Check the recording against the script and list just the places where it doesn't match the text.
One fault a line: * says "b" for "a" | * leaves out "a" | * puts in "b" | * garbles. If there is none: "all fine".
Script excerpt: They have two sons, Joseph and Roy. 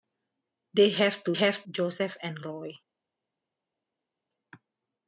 * says "have" for "sons"